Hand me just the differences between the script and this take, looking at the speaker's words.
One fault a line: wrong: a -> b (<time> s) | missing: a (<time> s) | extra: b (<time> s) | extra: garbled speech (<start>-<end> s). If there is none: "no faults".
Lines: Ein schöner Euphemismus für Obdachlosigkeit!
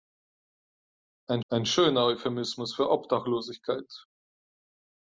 extra: ein (1.5 s)